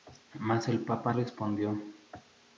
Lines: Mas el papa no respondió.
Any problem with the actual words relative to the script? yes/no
yes